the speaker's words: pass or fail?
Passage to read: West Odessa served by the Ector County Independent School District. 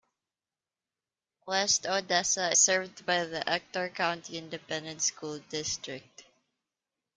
pass